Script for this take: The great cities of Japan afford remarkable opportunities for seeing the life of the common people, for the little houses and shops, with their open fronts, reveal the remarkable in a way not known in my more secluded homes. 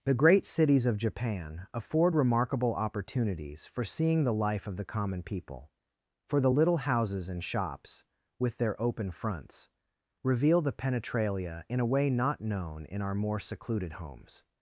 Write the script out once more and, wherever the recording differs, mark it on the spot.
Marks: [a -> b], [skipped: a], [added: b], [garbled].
The great cities of Japan afford remarkable opportunities for seeing the life of the common people, for the little houses and shops, with their open fronts, reveal the [remarkable -> penetralia] in a way not known in [my -> our] more secluded homes.